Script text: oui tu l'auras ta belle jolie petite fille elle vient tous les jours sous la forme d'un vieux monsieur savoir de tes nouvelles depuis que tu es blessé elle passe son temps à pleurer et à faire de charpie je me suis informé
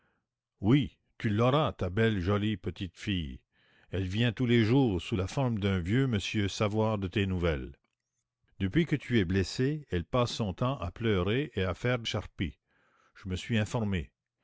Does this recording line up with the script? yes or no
yes